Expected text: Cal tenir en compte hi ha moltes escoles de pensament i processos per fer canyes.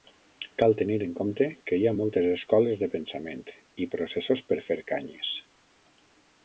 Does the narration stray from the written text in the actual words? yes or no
yes